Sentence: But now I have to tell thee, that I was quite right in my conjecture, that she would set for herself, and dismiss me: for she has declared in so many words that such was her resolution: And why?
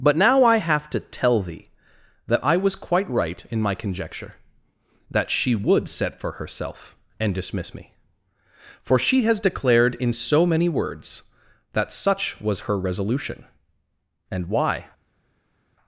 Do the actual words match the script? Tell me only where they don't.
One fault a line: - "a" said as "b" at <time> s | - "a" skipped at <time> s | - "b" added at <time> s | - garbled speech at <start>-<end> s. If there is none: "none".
none